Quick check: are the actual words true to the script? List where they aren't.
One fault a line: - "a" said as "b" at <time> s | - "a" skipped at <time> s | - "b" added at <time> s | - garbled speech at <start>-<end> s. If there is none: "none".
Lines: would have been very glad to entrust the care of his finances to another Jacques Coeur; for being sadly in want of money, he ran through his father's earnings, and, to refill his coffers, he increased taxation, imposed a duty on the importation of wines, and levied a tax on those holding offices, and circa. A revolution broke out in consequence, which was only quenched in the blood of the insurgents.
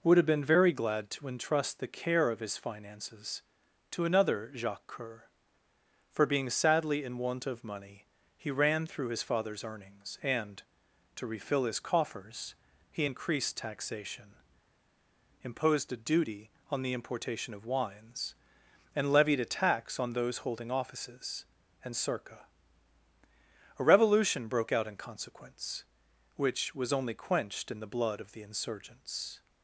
none